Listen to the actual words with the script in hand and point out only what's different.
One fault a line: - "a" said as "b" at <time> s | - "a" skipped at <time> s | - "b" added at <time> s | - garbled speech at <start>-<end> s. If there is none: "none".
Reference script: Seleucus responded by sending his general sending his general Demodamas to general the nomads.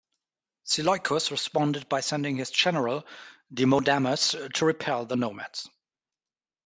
- "sending his general" skipped at 3.0 s
- "general" said as "repel" at 4.6 s